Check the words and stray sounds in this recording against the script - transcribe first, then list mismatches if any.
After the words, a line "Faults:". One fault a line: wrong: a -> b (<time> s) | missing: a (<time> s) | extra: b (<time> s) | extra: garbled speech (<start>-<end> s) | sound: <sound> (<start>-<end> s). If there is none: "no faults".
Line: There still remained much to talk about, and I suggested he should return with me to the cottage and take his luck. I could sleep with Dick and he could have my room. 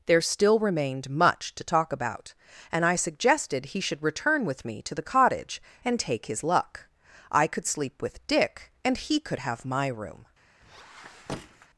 There still remained much to talk about, and I suggested he should return with me to the cottage and take his luck. I could sleep with Dick and he could have my room.
Faults:
sound: squeak (10.6-11.7 s)